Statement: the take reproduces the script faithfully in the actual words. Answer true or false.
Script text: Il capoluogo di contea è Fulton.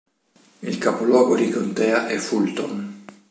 true